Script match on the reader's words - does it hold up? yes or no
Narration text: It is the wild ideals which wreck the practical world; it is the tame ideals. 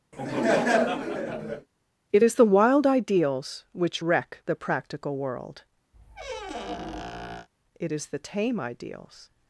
yes